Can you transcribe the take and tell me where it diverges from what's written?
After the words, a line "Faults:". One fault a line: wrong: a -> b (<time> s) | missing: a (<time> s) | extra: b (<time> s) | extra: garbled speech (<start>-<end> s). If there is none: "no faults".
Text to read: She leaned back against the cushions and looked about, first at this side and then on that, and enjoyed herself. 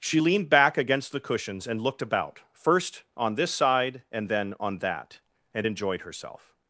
She leaned back against the cushions and looked about, first on this side and then on that, and enjoyed herself.
Faults:
wrong: at -> on (3.2 s)